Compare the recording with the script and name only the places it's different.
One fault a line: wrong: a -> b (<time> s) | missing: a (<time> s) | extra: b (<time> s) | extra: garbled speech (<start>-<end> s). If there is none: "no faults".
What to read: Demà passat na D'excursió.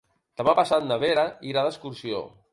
extra: Vera irà (1.0 s)